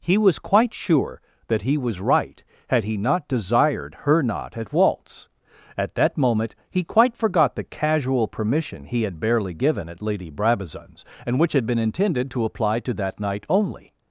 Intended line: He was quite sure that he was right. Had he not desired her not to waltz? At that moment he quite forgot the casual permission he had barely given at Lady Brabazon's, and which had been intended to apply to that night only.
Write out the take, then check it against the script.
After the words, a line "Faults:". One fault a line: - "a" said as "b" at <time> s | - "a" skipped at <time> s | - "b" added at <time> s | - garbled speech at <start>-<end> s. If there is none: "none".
He was quite sure that he was right. Had he not desired her not at waltz? At that moment he quite forgot the casual permission he had barely given at Lady Brabazon's, and which had been intended to apply to that night only.
Faults:
- "to" said as "at" at 4.6 s